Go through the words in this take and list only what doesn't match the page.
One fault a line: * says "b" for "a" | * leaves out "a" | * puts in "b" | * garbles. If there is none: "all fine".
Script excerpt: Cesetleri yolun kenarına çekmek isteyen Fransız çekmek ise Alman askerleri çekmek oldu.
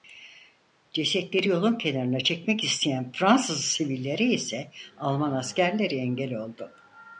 * says "sivillere" for "çekmek"
* says "engel" for "çekmek"